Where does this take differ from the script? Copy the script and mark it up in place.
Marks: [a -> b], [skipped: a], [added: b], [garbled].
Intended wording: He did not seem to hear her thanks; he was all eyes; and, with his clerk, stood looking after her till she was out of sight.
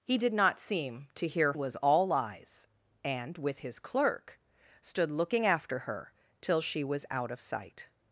He did not seem to hear [skipped: her thanks; he] was all eyes; and, with his clerk, stood looking after her till she was out of sight.